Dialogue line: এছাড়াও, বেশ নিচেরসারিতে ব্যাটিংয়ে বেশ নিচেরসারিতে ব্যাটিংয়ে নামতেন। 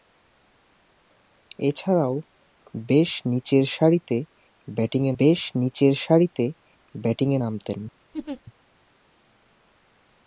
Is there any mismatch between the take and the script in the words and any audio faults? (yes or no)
yes